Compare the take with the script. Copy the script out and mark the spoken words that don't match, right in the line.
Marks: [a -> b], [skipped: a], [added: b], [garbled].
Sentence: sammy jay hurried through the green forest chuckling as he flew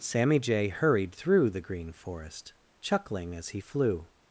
sammy jay hurried through the green forest chuckling as he flew